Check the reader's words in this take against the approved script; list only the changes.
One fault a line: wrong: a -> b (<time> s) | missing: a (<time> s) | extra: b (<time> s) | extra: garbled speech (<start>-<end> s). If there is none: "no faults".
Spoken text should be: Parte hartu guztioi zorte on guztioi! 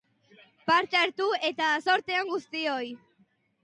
wrong: guztioi -> eta (1.5 s)